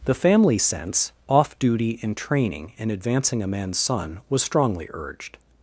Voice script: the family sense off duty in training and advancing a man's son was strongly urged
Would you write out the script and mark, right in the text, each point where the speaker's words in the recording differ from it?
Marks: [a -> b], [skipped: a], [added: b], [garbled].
the family sense off duty in training and advancing a man's son was strongly urged